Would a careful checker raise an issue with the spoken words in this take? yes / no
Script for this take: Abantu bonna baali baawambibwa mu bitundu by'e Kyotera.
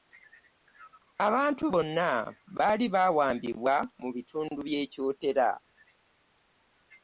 no